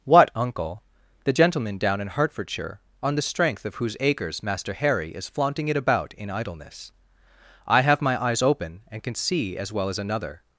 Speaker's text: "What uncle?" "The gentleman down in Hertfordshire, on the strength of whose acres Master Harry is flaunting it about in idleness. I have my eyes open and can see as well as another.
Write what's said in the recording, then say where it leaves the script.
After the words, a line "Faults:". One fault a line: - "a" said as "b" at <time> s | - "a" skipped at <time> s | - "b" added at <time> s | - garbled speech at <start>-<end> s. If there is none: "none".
"What uncle?" "The gentleman down in Hertfordshire, on the strength of whose acres Master Harry is flaunting it about in idleness. I have my eyes open and can see as well as another.
Faults:
none